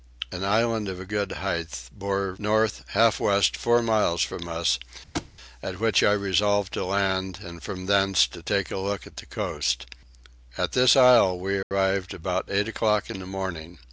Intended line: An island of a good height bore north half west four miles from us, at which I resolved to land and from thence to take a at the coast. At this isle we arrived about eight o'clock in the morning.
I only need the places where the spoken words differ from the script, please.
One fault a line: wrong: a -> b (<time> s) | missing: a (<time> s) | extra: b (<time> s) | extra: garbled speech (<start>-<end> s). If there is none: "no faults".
extra: look (8.8 s)